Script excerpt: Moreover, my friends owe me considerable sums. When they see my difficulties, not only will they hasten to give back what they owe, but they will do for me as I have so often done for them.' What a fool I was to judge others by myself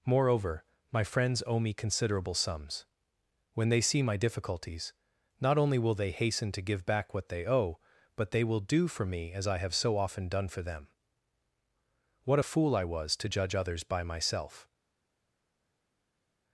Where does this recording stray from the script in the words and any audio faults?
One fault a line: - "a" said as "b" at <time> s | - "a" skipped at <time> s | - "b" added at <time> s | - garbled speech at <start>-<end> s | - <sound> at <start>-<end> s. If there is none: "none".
none